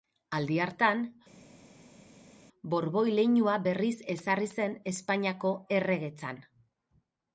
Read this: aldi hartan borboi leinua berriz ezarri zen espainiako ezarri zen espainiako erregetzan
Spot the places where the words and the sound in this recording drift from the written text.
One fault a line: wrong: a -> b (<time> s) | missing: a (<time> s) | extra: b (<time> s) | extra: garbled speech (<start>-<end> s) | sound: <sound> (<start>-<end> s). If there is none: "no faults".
missing: ezarri zen espainiako (5.5 s)